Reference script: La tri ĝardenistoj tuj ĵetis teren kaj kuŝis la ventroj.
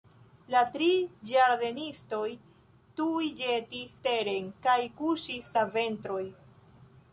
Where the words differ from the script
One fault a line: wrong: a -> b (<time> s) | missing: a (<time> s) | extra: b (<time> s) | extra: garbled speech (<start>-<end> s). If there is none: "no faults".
no faults